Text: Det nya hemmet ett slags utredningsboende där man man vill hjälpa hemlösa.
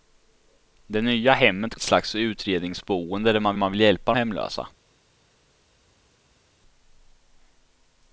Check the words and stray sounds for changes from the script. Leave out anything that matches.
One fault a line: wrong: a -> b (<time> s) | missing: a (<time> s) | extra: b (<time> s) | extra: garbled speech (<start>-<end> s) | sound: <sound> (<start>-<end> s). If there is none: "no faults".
no faults